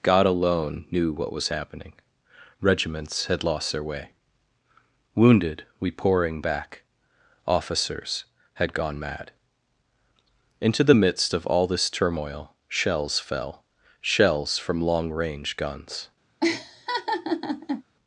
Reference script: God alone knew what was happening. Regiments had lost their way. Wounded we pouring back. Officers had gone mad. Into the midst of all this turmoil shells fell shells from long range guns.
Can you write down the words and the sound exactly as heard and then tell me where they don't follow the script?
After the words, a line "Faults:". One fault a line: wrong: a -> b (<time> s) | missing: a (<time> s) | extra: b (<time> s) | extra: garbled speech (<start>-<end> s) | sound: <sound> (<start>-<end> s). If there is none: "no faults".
God alone knew what was happening. Regiments had lost their way. Wounded we pouring back. Officers had gone mad. Into the midst of all this turmoil shells fell shells from long range guns.
Faults:
sound: laugh (16.4-17.8 s)